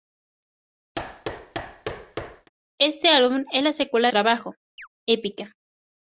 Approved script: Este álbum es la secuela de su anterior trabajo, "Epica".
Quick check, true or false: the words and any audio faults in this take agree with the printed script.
false